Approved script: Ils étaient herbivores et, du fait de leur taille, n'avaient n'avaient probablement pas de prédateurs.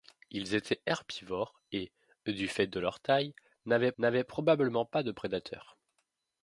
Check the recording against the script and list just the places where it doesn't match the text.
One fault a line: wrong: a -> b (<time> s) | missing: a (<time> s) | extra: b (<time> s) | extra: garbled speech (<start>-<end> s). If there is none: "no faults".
no faults